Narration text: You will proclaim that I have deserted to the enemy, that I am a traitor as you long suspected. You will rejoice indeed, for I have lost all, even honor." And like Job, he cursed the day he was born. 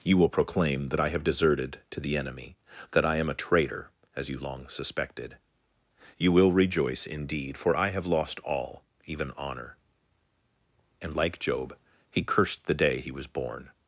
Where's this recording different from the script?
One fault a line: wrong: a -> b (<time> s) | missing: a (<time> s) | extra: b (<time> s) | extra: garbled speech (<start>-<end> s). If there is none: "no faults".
no faults